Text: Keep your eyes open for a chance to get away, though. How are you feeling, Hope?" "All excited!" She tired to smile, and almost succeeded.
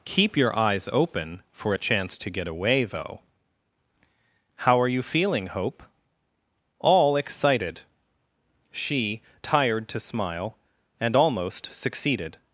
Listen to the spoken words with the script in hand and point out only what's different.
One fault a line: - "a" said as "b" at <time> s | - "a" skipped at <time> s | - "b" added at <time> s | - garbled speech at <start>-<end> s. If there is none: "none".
none